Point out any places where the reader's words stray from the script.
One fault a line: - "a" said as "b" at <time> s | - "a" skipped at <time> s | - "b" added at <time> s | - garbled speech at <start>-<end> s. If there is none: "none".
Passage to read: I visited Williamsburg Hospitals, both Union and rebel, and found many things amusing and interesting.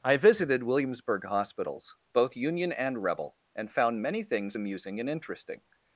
none